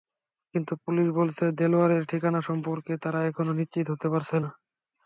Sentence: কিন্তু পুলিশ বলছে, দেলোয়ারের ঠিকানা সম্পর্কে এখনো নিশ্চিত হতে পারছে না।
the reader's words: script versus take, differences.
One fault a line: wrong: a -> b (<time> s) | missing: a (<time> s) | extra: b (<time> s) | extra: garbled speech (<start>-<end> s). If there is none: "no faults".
extra: তারা (3.0 s)